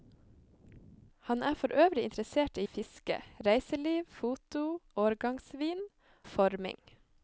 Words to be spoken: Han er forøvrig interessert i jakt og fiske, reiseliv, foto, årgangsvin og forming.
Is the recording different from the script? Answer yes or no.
yes